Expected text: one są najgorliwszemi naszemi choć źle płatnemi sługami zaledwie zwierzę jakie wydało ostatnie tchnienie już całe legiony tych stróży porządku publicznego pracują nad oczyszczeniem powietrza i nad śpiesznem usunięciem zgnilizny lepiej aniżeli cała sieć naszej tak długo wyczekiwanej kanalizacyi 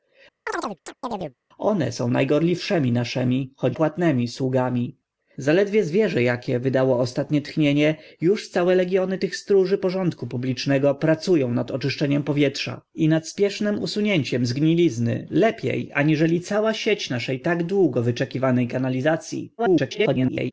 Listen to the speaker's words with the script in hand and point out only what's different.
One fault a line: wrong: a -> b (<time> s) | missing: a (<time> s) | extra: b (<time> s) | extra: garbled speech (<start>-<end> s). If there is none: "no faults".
missing: źle (3.8 s)
extra: garbled speech (19.6-20.5 s)